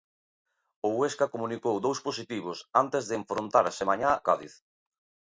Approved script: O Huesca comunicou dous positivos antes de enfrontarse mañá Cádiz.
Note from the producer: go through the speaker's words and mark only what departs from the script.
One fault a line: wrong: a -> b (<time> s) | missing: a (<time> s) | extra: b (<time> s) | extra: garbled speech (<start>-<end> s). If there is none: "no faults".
no faults